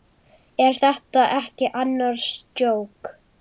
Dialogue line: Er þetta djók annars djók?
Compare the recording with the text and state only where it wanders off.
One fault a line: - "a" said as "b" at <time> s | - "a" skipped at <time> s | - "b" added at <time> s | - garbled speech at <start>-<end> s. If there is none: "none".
- "djók" said as "ekki" at 1.4 s